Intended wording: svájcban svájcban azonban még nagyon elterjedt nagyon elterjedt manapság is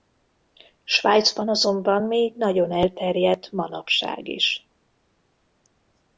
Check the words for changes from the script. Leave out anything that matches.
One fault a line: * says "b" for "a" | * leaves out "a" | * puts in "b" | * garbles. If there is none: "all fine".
* leaves out "svájcban"
* leaves out "nagyon elterjedt"